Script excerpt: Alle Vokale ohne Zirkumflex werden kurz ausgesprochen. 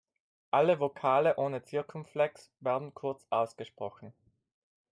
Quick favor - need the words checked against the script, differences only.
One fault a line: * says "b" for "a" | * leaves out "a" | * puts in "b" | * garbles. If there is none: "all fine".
all fine